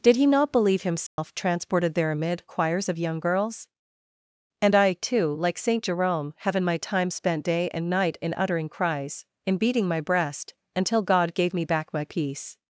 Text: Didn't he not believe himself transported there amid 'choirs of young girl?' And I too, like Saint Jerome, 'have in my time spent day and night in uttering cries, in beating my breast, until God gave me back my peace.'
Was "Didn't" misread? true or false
true